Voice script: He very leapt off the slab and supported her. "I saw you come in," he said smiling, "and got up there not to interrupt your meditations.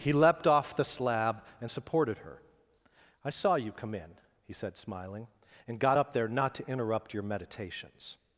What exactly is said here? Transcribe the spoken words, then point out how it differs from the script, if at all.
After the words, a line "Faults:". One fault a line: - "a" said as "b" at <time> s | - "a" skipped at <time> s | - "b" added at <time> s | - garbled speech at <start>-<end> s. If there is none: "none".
He leapt off the slab and supported her. "I saw you come in," he said smiling, "and got up there not to interrupt your meditations.
Faults:
- "very" skipped at 0.1 s